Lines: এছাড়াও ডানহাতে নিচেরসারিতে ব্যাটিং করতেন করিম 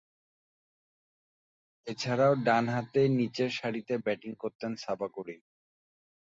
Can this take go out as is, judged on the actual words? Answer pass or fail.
fail